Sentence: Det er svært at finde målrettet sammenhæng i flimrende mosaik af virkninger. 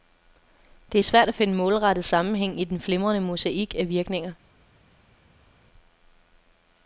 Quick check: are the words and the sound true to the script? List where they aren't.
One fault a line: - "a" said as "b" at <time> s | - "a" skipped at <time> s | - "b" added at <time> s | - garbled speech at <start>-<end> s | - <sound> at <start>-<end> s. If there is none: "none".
- "den" added at 2.6 s